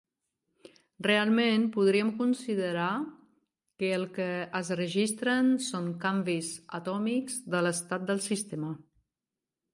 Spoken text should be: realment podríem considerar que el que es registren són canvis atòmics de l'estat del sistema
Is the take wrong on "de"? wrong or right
right